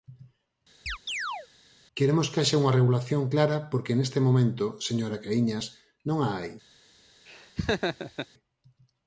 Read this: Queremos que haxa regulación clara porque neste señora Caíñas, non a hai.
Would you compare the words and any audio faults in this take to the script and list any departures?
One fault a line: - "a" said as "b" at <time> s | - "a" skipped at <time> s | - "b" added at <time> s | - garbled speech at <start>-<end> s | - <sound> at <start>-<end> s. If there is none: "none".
- chirp at 0.9-1.5 s
- "unha" added at 2.6 s
- "momento" added at 4.3 s
- laugh at 7.3-8.3 s